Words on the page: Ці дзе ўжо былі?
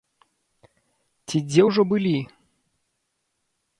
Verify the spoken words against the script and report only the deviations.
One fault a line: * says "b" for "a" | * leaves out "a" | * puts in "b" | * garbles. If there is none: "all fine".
all fine